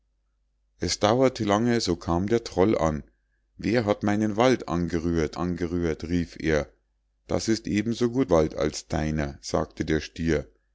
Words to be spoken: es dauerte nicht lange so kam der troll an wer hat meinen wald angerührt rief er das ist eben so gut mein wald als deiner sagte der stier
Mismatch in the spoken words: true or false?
true